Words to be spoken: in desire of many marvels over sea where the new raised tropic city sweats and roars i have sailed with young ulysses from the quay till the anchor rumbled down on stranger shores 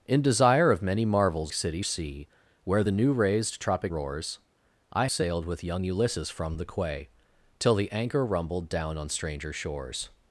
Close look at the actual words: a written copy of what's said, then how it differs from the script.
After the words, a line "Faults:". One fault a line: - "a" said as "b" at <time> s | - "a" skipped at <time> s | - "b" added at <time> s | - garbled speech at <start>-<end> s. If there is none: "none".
in desire of many marvels city sea where the new raised tropic roars i sailed with young ulysses from the quay till the anchor rumbled down on stranger shores
Faults:
- "over" said as "city" at 1.5 s
- "city sweats and" skipped at 3.9 s
- "have" skipped at 5.1 s